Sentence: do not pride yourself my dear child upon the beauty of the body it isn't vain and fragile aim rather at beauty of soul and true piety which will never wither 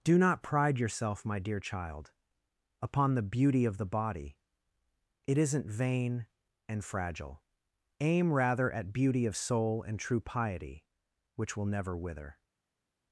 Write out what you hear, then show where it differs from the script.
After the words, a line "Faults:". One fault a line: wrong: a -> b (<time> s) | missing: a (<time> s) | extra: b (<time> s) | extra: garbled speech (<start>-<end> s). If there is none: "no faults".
do not pride yourself my dear child upon the beauty of the body it isn't vain and fragile aim rather at beauty of soul and true piety which will never wither
Faults:
no faults